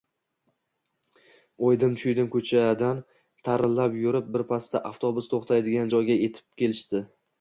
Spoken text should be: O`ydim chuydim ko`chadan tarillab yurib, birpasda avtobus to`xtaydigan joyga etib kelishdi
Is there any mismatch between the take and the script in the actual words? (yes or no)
no